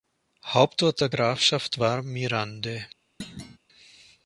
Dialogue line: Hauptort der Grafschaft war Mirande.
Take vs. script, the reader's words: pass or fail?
pass